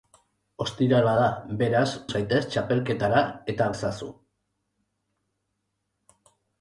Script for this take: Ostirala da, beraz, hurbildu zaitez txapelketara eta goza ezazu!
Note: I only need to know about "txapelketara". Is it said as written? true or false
true